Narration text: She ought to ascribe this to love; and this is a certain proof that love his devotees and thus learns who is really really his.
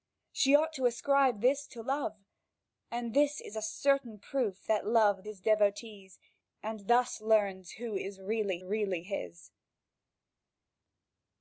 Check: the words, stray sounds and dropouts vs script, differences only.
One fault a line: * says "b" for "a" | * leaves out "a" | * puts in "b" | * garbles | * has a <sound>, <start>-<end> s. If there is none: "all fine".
all fine